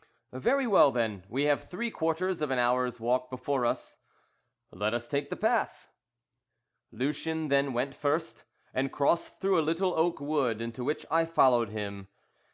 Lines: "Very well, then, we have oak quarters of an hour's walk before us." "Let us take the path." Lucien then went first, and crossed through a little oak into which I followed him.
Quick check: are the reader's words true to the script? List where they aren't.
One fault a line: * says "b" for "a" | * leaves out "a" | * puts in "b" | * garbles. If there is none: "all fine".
* says "three" for "oak"
* puts in "wood"